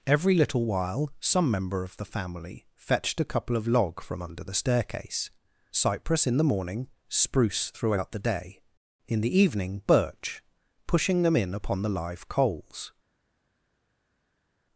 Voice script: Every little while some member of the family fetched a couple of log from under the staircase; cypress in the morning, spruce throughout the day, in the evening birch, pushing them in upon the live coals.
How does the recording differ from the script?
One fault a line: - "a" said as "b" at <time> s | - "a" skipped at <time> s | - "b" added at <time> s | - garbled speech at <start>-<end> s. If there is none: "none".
none